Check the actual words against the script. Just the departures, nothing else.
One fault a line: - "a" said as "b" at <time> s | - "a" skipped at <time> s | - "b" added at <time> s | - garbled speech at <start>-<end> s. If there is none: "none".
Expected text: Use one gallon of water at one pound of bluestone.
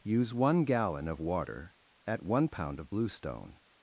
none